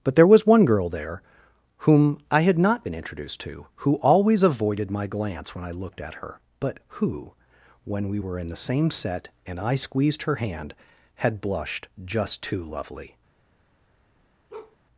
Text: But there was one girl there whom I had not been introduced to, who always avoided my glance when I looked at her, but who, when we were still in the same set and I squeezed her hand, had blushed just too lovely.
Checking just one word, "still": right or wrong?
wrong